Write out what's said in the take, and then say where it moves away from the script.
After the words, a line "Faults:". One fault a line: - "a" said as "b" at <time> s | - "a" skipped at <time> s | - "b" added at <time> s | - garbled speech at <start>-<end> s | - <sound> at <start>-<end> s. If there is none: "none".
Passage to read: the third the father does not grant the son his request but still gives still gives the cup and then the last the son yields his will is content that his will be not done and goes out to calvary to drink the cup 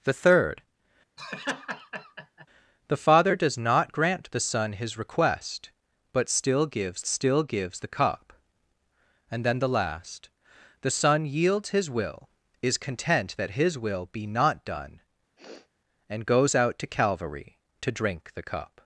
the third the father does not grant the son his request but still gives still gives the cup and then the last the son yields his will is content that his will be not done and goes out to calvary to drink the cup
Faults:
- laugh at 1.2-2.5 s
- sniff at 15.4-15.7 s